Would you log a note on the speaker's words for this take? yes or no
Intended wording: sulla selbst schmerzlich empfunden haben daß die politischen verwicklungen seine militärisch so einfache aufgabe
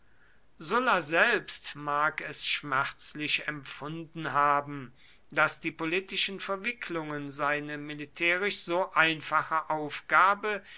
yes